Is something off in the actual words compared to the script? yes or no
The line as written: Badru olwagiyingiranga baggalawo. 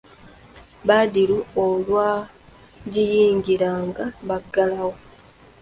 no